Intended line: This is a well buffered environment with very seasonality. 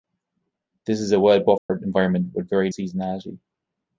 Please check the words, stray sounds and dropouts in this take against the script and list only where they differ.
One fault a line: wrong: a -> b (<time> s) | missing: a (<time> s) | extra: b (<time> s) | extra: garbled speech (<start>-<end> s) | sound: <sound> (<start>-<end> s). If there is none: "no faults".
sound: dropout (1.6-1.7 s)